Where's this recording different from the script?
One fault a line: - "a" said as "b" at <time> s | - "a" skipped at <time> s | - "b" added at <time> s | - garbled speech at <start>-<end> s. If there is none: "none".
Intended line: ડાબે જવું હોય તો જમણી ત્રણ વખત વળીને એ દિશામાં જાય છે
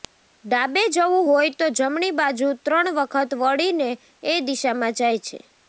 - "બાજુ" added at 2.2 s